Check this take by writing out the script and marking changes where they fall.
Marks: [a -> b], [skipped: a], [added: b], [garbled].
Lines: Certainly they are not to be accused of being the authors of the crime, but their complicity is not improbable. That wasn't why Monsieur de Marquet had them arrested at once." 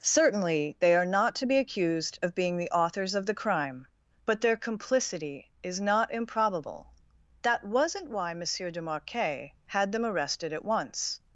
Certainly they are not to be accused of being the authors of the crime, but their complicity is not improbable. That wasn't why Monsieur de Marquet had them arrested at once."